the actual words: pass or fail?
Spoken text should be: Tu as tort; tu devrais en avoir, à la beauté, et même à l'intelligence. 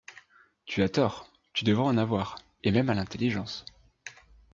fail